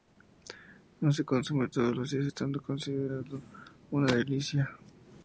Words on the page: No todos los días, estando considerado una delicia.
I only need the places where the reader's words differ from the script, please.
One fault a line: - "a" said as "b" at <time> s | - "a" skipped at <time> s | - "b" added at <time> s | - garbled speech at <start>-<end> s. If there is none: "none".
- "se consume" added at 1.1 s